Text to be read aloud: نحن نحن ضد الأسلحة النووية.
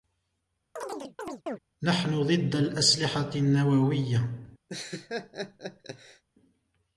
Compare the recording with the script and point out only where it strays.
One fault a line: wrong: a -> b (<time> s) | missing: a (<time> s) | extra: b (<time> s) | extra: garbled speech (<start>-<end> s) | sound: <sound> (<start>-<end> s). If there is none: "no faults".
sound: chirp (0.8-1.6 s)
missing: نحن (2.2 s)
sound: laugh (4.7-6.2 s)